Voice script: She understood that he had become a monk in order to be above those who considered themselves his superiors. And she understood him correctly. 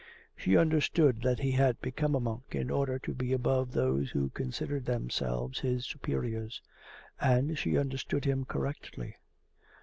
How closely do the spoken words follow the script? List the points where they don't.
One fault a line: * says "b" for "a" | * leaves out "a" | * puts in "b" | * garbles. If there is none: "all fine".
all fine